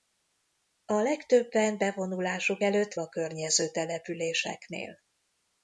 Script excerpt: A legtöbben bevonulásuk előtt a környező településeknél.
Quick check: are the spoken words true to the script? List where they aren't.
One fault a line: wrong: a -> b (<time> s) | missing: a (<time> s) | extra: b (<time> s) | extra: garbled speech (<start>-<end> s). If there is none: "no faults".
no faults